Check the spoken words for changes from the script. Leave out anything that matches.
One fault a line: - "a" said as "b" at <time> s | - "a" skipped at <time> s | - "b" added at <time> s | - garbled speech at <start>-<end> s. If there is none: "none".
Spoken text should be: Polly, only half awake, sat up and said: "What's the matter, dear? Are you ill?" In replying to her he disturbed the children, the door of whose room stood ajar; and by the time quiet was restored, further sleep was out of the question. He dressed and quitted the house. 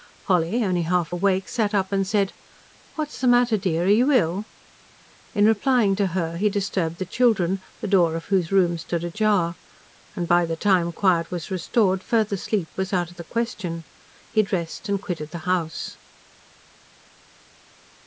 none